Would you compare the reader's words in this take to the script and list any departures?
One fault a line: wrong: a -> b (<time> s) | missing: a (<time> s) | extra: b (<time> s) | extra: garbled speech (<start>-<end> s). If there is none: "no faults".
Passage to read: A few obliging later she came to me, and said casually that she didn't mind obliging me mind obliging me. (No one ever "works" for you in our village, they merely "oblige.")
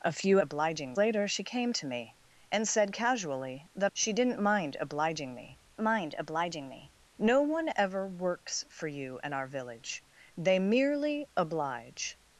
no faults